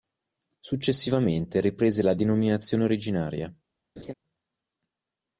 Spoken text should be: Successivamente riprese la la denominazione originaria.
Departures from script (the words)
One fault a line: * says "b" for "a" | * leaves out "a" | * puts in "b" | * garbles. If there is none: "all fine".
* leaves out "la"